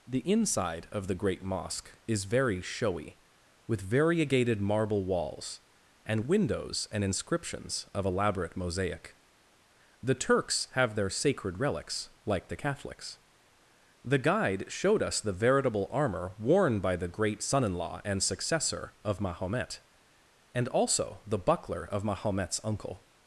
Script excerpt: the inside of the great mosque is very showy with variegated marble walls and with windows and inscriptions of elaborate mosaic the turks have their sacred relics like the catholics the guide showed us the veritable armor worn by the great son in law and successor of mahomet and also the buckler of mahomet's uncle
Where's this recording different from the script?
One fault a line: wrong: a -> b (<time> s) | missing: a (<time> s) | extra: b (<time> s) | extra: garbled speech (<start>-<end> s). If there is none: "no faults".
missing: with (6.2 s)